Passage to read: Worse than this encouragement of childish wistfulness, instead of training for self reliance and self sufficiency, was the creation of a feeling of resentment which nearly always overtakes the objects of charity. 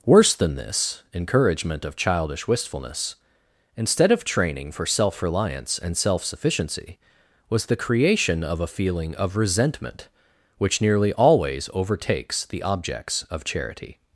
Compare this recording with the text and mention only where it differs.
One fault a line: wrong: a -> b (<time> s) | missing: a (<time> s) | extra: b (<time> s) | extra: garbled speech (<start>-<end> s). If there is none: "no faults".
no faults